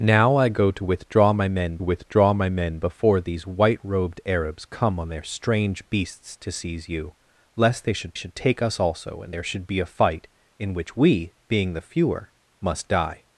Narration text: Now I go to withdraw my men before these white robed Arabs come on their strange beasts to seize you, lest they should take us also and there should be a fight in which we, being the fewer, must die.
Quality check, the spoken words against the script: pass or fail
fail